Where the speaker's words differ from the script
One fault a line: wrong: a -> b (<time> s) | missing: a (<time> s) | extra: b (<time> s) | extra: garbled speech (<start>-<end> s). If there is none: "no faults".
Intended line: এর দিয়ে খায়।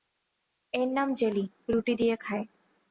extra: নাম জেলি রুটি (1.0 s)